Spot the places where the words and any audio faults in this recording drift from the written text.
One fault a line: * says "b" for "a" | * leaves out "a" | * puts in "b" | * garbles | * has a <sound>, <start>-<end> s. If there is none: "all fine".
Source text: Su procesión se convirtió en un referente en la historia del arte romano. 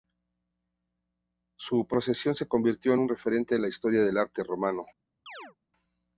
* has a chirp, 5.3-5.6 s